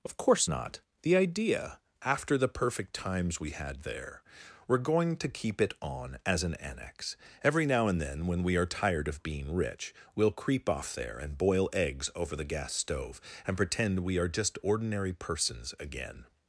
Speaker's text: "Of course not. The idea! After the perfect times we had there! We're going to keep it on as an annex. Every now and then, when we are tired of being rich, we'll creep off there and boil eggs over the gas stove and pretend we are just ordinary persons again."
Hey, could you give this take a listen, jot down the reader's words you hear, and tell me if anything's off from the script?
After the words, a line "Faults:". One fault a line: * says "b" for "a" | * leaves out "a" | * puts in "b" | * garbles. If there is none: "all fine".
"Of course not. The idea! After the perfect times we had there! We're going to keep it on as an annex. Every now and then, when we are tired of being rich, we'll creep off there and boil eggs over the gas stove and pretend we are just ordinary persons again."
Faults:
all fine